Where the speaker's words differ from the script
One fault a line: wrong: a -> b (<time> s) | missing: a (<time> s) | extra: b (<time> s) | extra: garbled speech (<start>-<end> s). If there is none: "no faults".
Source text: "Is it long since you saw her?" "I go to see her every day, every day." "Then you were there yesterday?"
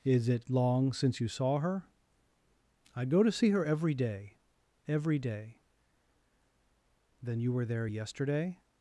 no faults